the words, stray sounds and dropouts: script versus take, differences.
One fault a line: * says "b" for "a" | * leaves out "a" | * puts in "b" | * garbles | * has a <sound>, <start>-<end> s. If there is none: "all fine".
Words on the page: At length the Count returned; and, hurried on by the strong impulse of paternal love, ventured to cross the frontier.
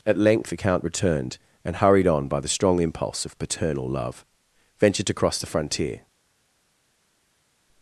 all fine